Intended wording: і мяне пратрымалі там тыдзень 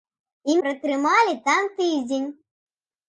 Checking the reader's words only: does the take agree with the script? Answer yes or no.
no